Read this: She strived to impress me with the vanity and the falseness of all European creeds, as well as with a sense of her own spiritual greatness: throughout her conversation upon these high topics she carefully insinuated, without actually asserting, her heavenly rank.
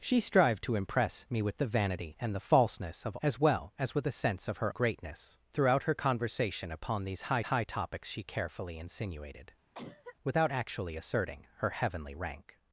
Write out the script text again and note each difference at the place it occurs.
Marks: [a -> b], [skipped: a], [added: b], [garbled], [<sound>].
She strived to impress me with the vanity and the falseness of [skipped: all European creeds,] as well as with a sense of her [skipped: own spiritual] greatness: throughout her conversation upon these high [added: high] topics she carefully insinuated, [cough] without actually asserting, her heavenly rank.